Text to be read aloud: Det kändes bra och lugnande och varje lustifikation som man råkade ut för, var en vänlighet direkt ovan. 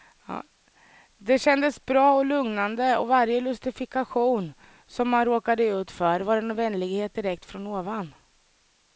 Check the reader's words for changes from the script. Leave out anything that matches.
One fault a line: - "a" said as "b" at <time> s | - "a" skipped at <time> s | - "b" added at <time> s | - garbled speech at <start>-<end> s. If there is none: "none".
- "från" added at 7.5 s